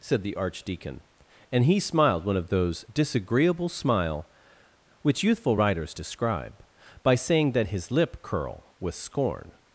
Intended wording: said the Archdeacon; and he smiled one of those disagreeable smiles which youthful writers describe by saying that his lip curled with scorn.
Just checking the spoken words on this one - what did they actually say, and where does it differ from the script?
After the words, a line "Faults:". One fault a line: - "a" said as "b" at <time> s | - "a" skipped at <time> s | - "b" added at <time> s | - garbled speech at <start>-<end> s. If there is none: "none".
said the Archdeacon; and he smiled one of those disagreeable smile which youthful writers describe by saying that his lip curl with scorn.
Faults:
- "smiles" said as "smile" at 3.7 s
- "curled" said as "curl" at 8.2 s